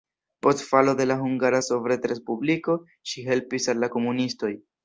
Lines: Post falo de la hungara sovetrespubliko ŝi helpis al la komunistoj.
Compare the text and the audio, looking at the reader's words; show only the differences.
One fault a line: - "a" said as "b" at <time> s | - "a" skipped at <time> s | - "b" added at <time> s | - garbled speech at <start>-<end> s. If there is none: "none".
none